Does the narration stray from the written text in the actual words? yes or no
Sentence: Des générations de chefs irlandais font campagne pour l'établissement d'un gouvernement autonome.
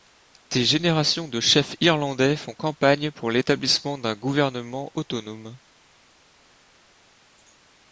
no